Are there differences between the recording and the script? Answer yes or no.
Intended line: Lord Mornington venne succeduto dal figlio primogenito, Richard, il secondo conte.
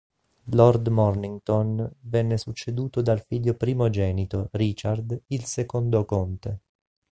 no